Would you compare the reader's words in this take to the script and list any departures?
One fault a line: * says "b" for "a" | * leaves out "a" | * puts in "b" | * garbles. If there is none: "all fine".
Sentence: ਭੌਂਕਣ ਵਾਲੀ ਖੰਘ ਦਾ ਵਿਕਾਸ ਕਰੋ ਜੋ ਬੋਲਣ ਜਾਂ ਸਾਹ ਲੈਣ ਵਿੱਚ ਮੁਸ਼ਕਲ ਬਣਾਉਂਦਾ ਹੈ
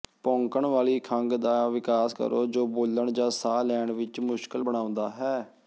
all fine